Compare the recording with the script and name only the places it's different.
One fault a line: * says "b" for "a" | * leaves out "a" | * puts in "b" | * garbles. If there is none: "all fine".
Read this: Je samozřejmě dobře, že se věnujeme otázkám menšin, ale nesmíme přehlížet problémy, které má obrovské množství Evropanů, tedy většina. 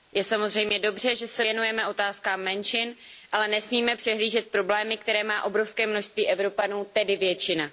all fine